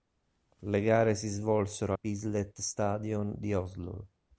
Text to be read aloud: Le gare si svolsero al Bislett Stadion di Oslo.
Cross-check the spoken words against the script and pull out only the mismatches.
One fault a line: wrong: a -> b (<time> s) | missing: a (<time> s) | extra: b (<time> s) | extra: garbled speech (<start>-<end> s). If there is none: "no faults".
missing: al (1.9 s)